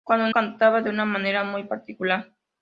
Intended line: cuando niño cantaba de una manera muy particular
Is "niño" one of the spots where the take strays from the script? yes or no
yes